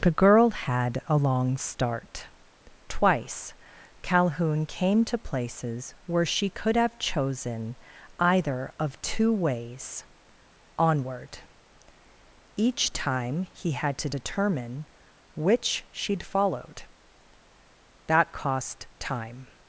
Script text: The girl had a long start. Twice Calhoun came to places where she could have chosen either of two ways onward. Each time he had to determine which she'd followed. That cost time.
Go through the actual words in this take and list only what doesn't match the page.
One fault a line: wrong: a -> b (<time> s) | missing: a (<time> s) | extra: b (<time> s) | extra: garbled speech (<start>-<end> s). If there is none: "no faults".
no faults